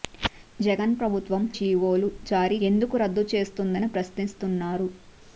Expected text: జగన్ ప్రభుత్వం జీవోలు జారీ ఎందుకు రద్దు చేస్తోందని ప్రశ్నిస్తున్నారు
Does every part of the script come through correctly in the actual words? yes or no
yes